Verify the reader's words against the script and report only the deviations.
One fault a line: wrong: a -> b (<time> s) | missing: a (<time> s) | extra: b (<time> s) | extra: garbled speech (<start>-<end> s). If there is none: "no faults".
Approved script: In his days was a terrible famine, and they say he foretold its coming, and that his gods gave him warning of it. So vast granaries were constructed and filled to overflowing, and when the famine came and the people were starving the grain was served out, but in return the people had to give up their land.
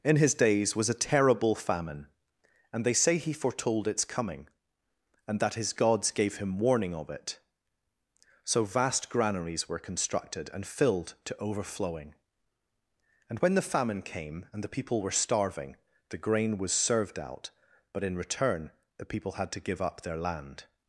no faults